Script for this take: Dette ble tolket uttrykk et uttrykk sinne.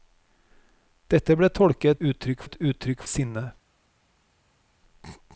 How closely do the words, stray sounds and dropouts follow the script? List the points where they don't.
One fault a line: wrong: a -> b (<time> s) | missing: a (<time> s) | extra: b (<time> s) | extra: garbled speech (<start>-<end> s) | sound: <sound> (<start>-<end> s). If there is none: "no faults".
no faults